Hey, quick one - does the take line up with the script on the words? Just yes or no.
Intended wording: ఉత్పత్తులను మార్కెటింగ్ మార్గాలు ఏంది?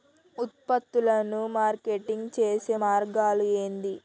no